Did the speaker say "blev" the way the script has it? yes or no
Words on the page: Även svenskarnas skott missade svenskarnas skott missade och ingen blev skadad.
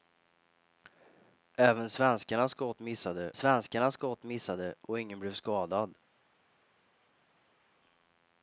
yes